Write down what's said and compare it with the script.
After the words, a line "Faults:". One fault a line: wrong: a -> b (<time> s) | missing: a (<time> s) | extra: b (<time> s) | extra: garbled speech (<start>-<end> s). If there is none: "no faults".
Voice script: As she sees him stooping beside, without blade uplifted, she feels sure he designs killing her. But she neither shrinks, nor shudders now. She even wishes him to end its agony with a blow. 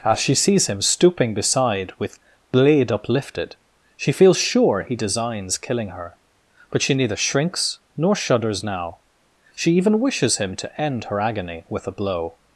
As she sees him stooping beside, with blade uplifted, she feels sure he designs killing her. But she neither shrinks, nor shudders now. She even wishes him to end her agony with a blow.
Faults:
wrong: without -> with (2.0 s)
wrong: its -> her (11.1 s)